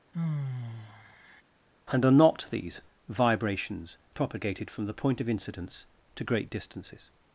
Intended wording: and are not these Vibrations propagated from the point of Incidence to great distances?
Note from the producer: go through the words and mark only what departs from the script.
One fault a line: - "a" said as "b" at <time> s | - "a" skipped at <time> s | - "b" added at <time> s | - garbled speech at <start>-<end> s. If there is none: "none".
none